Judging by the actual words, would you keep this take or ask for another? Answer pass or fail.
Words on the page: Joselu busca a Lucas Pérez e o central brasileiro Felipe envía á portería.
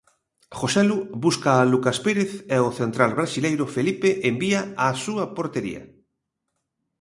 fail